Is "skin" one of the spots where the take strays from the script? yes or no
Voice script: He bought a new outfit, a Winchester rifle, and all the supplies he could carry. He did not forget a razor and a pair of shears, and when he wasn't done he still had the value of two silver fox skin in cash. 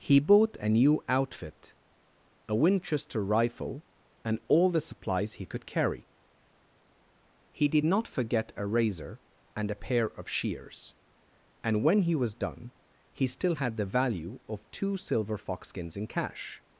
yes